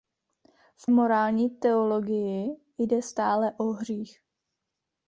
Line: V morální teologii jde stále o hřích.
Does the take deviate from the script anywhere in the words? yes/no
no